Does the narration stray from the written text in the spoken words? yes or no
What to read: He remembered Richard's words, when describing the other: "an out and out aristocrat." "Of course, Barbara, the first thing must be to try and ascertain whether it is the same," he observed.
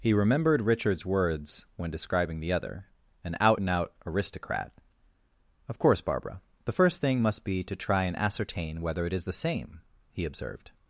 no